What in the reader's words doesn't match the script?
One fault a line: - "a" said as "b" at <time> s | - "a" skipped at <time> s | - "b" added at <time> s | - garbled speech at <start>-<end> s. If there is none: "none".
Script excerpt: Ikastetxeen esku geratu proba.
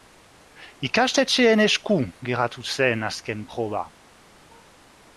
- "zen azken" added at 2.8 s